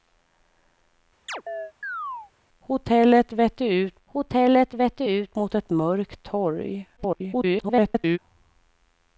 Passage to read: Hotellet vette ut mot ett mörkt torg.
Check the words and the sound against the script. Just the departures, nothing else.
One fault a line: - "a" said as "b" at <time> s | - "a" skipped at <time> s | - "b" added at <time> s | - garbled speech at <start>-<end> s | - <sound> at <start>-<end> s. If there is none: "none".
- chirp at 1.3-2.3 s
- "hotellet vette ut" added at 4.0 s
- garbled speech at 7.0-8.2 s